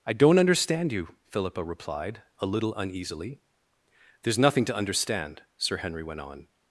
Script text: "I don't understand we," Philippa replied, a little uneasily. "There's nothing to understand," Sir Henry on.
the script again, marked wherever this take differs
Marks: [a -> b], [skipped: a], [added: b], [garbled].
"I don't understand [we," -> you] Philippa replied, a little uneasily. "There's nothing to understand," Sir Henry [added: went] on.